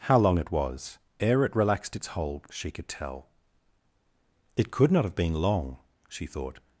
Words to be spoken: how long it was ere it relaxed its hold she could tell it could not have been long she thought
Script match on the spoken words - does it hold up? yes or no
yes